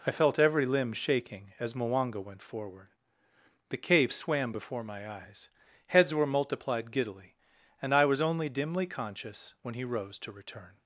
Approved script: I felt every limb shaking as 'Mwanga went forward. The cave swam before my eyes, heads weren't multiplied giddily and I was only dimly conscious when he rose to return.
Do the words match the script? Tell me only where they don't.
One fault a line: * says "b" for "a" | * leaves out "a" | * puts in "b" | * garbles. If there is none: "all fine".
* says "were" for "weren't"